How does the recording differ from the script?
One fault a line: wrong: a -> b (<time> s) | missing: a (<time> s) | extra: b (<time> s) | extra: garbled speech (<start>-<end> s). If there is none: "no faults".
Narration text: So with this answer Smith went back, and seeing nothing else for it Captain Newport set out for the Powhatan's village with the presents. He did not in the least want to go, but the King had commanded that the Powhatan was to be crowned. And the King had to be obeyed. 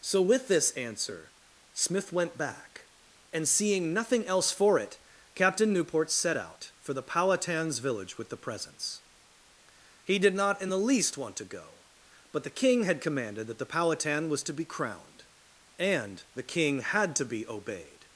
no faults